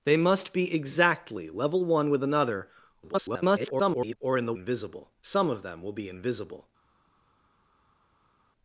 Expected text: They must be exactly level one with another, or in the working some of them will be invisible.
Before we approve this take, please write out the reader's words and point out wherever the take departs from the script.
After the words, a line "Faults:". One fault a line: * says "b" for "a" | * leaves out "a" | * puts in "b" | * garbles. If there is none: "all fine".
They must be exactly level one with another, [garbled] or in the invisible some of them will be invisible.
Faults:
* garbles
* says "invisible" for "working"